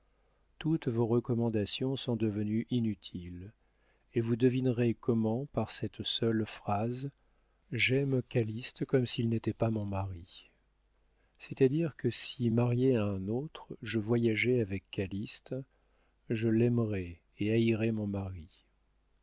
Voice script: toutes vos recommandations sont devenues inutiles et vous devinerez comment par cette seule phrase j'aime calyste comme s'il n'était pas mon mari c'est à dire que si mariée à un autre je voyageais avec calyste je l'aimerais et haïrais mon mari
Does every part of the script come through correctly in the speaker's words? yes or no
yes